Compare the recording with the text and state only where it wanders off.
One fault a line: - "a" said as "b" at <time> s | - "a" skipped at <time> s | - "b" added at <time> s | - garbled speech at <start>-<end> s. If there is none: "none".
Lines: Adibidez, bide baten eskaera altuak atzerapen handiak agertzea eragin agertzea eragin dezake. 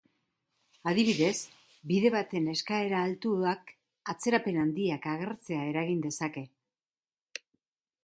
- "agertzea eragin" skipped at 6.0 s